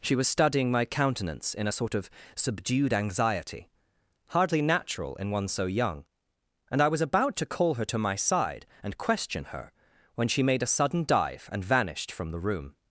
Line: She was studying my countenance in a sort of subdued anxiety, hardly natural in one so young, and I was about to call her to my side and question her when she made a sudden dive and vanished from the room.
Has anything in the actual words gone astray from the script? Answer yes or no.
no